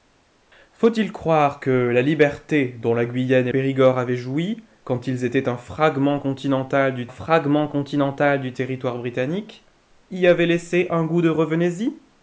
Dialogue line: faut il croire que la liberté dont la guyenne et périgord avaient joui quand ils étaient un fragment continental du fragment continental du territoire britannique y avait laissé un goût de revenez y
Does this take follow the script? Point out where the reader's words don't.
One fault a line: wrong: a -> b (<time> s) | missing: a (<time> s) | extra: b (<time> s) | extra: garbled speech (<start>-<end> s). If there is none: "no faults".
no faults